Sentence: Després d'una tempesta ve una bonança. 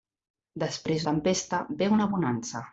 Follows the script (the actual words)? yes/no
no